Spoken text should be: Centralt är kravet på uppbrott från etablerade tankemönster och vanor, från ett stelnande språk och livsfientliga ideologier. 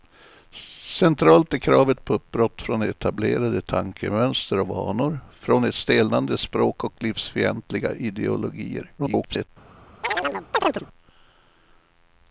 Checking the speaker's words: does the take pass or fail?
fail